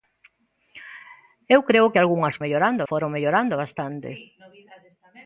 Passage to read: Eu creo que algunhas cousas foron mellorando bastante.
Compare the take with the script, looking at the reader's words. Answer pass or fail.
fail